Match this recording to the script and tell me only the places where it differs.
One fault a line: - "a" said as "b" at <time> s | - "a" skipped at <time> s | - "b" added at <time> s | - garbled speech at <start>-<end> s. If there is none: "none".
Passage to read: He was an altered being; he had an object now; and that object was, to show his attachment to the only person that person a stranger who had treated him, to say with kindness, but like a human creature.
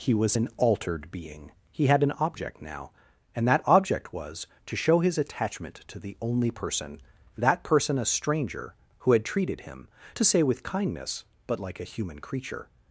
none